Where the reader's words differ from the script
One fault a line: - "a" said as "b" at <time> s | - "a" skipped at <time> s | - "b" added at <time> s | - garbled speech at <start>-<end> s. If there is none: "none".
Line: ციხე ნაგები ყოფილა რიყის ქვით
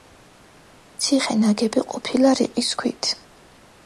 none